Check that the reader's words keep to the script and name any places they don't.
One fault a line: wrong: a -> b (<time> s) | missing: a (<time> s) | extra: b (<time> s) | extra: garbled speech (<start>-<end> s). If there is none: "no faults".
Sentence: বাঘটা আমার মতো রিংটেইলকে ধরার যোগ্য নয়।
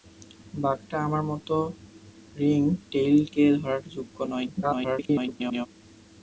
extra: garbled speech (4.6-5.7 s)